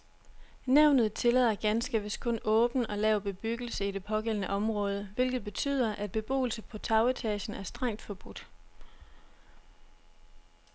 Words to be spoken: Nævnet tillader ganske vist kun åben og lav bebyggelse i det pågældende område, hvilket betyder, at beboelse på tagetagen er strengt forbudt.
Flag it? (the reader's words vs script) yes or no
no